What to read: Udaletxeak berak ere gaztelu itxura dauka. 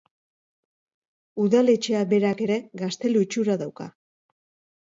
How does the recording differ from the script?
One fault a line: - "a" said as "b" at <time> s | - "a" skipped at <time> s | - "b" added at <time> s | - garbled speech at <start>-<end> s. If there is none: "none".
none